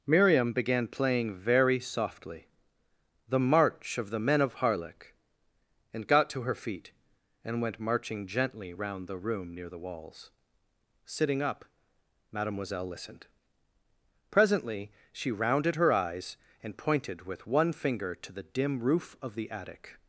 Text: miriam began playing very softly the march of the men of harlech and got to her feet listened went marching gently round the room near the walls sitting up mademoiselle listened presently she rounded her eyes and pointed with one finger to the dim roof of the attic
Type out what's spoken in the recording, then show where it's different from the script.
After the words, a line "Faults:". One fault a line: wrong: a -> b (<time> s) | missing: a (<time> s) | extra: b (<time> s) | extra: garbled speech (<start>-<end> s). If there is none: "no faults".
miriam began playing very softly the march of the men of harlech and got to her feet and went marching gently round the room near the walls sitting up mademoiselle listened presently she rounded her eyes and pointed with one finger to the dim roof of the attic
Faults:
wrong: listened -> and (7.5 s)